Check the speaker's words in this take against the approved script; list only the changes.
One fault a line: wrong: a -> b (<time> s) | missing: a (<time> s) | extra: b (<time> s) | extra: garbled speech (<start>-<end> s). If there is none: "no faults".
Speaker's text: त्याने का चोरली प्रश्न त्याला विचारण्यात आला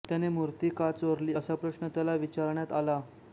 extra: मूर्ती (0.3 s)
extra: असा (1.3 s)